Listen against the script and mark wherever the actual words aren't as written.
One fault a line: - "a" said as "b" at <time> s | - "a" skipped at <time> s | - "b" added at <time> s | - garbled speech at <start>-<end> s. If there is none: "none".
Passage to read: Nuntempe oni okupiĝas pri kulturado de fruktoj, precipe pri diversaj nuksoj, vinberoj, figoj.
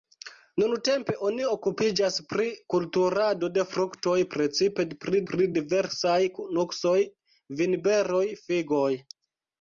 - "pri" added at 5.3 s